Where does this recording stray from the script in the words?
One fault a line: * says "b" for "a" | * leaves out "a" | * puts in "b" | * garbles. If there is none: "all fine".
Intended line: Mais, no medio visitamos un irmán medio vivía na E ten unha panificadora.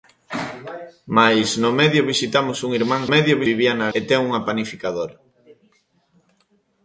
all fine